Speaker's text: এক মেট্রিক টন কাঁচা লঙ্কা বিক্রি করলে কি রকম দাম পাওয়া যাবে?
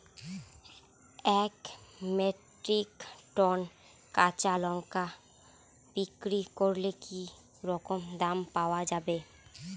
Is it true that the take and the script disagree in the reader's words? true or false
false